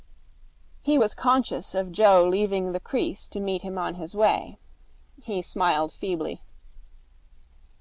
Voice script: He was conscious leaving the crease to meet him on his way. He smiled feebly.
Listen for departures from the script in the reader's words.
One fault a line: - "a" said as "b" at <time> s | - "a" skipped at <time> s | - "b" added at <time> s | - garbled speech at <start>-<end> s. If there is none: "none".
- "of Joe" added at 1.8 s